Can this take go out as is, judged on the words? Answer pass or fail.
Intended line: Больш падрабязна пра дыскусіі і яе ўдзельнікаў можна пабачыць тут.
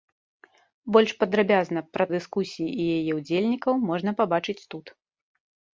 pass